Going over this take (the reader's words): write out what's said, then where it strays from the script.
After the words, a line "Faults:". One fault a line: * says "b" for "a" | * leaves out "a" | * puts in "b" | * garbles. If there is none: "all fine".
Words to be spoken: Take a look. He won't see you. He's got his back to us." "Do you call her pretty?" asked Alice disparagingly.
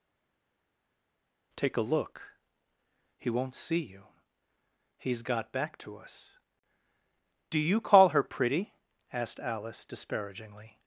Take a look. He won't see you. He's got back to us." "Do you call her pretty?" asked Alice disparagingly.
Faults:
* leaves out "his"